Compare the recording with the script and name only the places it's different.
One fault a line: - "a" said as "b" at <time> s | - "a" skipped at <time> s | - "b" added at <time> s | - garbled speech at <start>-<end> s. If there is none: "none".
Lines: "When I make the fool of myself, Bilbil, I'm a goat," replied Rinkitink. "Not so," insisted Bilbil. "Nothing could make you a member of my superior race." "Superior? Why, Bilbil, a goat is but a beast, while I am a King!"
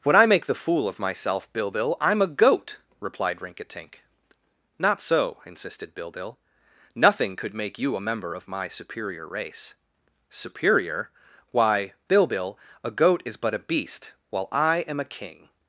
none